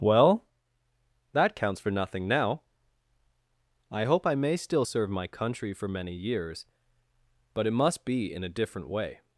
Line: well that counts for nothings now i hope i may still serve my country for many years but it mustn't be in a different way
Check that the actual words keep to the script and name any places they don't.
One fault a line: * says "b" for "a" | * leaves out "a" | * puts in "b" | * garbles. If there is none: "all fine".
* says "nothing" for "nothings"
* says "must" for "mustn't"